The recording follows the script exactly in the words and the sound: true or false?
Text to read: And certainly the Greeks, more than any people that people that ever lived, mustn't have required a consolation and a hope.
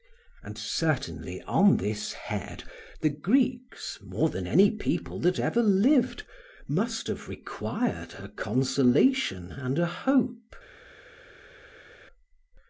false